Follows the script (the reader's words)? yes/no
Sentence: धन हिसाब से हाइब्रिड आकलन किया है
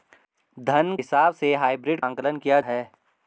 yes